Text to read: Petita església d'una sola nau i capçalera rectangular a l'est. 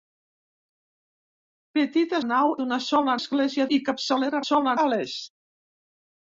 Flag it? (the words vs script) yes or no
yes